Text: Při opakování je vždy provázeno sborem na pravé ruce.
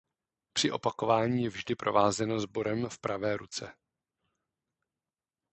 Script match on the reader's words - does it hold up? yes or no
no